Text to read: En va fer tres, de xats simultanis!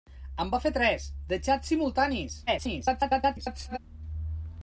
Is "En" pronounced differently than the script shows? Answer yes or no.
no